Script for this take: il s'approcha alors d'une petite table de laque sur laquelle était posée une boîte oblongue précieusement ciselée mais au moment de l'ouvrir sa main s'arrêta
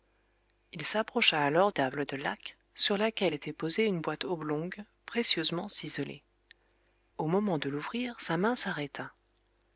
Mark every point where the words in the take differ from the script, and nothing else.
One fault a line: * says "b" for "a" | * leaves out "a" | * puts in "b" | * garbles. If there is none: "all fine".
* leaves out "d'une petite"
* leaves out "mais"